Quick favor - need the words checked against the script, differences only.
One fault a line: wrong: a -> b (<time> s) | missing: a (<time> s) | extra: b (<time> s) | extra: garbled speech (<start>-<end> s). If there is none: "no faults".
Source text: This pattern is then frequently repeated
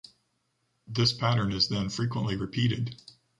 no faults